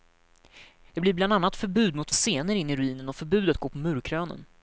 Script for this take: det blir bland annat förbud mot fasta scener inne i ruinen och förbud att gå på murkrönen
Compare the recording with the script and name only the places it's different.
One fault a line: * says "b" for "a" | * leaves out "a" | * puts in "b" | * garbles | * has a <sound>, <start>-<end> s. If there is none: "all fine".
* leaves out "fasta"